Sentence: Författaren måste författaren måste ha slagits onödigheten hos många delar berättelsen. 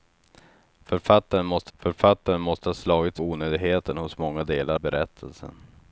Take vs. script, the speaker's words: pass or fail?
pass